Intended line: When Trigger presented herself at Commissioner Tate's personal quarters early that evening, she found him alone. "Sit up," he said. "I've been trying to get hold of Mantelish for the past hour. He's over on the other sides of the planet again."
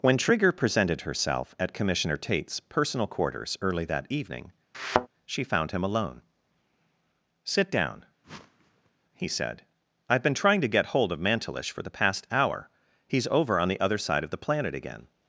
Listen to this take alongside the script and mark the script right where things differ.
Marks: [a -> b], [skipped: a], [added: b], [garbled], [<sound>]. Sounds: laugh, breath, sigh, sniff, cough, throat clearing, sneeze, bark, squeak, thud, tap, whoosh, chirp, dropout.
When Trigger presented herself at Commissioner Tate's personal quarters early that evening, [thud] she found him alone. "Sit [up," -> down] [whoosh] he said. "I've been trying to get hold of Mantelish for the past hour. He's over on the other [sides -> side] of the planet again."